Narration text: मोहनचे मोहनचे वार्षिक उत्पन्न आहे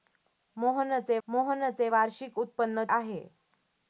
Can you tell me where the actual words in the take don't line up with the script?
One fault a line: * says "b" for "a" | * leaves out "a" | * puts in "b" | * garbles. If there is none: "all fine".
all fine